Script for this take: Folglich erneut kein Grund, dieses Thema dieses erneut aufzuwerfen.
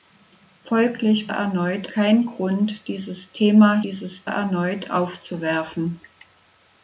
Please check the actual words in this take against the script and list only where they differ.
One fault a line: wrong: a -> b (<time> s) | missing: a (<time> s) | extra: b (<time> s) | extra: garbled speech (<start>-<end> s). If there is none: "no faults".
no faults